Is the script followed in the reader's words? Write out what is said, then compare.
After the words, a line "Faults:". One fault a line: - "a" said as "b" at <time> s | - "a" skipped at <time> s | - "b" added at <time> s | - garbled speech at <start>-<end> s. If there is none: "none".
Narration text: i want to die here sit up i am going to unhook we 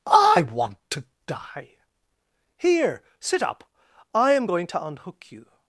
i want to die here sit up i am going to unhook you
Faults:
- "we" said as "you" at 5.3 s